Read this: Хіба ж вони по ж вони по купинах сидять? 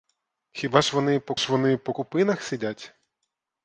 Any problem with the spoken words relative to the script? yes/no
no